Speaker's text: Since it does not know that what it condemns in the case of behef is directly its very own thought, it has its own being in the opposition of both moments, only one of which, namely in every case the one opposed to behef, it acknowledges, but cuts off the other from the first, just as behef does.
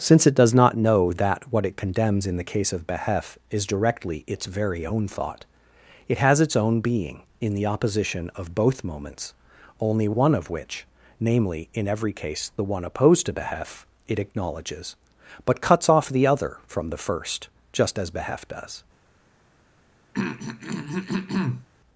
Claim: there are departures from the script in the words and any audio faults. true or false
true